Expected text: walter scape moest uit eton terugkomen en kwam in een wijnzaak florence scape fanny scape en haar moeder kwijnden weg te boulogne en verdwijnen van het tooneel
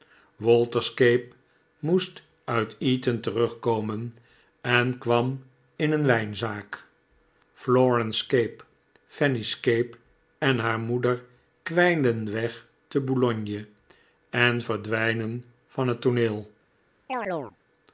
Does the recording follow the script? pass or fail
pass